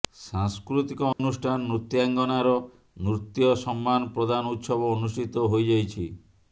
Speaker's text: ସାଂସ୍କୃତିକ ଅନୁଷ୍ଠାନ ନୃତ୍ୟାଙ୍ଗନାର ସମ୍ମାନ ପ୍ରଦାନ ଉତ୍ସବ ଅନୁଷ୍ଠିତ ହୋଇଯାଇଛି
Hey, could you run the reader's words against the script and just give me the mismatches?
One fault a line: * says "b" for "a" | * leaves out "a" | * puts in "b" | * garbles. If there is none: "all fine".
* puts in "ନୃତ୍ୟ"